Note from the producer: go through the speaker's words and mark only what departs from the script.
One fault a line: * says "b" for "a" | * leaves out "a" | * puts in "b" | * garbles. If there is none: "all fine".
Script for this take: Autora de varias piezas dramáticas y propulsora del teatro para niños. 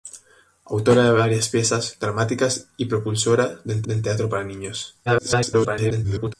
* puts in "del"
* garbles